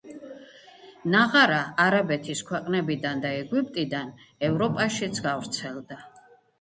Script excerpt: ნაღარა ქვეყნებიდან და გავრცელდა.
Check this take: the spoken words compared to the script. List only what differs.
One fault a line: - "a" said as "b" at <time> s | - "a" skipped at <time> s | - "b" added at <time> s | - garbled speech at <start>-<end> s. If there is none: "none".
- "არაბეთის" added at 1.8 s
- "ეგვიპტიდან ევროპაშიც" added at 3.4 s